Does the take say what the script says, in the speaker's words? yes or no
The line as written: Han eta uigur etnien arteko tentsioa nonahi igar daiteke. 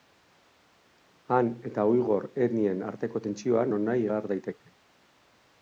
yes